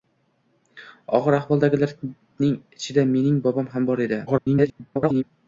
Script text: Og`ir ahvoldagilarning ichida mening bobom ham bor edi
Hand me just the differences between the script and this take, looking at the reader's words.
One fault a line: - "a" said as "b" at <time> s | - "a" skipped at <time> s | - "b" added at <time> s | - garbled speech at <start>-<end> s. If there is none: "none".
- garbled speech at 4.3-5.2 s